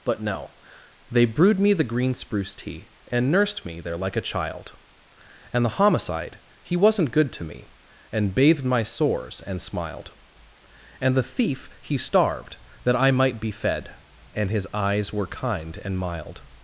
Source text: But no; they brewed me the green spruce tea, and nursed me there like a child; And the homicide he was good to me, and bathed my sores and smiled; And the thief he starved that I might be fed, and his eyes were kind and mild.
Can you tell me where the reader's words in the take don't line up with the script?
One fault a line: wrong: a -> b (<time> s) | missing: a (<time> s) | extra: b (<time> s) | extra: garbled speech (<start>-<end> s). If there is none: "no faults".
wrong: was -> wasn't (6.8 s)